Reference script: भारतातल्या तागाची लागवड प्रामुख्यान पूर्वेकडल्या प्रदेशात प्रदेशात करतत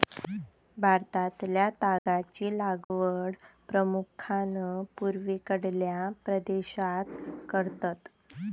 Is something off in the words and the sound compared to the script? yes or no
yes